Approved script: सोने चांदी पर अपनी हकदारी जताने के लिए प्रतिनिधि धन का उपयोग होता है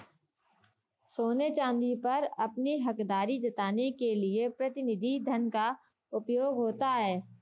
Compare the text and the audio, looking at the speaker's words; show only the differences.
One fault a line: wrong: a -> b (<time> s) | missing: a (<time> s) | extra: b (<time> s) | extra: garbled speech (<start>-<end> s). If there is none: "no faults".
no faults